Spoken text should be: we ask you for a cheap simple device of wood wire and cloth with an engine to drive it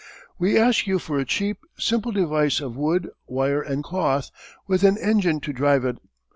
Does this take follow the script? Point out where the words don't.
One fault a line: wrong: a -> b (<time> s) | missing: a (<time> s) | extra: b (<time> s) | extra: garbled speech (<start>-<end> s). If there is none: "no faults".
no faults